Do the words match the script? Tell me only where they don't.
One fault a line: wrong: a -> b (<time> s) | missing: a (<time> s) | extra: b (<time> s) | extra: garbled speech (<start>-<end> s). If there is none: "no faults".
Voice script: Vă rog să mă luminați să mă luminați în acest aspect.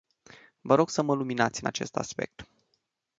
missing: să mă luminați (1.6 s)